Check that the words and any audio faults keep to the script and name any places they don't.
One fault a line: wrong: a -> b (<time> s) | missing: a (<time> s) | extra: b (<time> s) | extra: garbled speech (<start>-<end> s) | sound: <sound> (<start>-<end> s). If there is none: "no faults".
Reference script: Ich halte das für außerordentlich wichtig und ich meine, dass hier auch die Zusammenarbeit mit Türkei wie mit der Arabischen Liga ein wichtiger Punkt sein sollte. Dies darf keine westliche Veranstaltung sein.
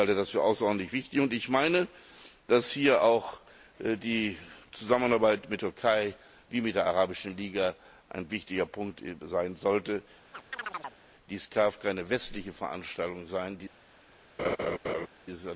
sound: chirp (10.3-11.0 s)
sound: laugh (14.4-15.1 s)